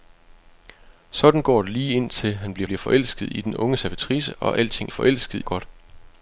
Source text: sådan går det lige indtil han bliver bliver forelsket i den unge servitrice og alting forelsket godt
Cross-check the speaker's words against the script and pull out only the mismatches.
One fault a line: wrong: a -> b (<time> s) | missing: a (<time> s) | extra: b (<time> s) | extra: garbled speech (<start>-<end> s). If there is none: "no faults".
no faults